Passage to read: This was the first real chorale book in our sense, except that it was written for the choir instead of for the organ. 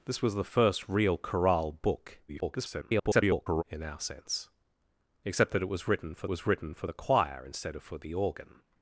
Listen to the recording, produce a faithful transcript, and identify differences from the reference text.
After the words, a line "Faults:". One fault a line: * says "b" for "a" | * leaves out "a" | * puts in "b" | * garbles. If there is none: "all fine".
This was the first real chorale book [garbled] in our sense, except that it was written for was written for the choir instead of for the organ.
Faults:
* garbles
* puts in "was written for"